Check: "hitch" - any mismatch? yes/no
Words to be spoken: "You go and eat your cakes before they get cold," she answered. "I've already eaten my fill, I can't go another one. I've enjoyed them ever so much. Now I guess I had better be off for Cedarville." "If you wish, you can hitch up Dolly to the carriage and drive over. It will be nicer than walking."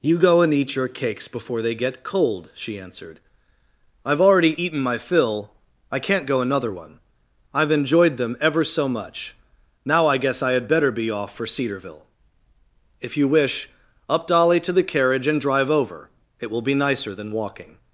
yes